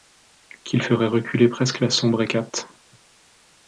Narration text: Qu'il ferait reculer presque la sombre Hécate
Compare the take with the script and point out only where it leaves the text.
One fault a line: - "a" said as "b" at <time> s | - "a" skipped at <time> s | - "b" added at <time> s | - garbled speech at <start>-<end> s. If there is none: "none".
none